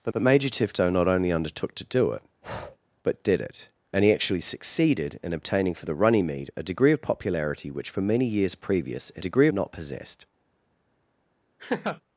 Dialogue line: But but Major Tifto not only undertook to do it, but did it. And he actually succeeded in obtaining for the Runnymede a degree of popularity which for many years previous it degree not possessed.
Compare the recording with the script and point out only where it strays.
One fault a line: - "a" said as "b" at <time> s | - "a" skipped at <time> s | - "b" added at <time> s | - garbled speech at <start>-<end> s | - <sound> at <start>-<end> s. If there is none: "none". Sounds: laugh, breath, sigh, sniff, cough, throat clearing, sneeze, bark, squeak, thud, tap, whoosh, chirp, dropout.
- breath at 2.4-2.8 s
- laugh at 11.6-12.0 s